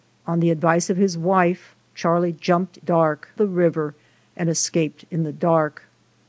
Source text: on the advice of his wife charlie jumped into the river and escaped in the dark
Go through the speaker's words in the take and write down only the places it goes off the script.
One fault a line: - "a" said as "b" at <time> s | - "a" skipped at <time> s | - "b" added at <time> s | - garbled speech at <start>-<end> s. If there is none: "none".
- "into" said as "dark" at 2.8 s